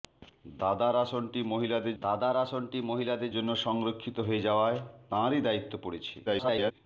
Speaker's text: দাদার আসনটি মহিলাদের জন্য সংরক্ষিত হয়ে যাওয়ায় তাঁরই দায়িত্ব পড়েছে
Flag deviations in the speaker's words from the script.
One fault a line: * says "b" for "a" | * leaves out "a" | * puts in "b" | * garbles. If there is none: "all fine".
* puts in "দাদার আসনটি মহিলাদের"
* garbles